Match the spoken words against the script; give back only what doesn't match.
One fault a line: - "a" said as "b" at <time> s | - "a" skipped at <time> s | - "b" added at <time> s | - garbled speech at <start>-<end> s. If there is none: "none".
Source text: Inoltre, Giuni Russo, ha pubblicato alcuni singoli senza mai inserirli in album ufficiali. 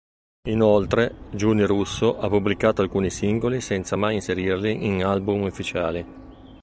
none